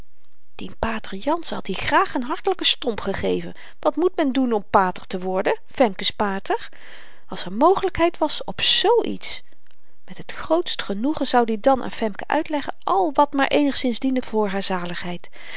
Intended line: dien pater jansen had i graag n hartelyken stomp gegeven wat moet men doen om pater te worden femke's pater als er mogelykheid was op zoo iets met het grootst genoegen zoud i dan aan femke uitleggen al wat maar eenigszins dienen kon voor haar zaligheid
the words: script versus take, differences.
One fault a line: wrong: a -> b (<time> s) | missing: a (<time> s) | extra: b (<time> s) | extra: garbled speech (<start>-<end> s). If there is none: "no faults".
missing: kon (14.2 s)